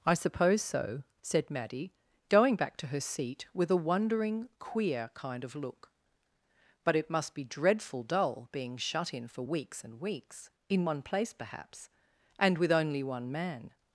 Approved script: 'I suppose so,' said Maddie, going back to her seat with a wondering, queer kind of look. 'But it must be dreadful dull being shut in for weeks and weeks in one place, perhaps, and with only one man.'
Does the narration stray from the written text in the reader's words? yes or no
no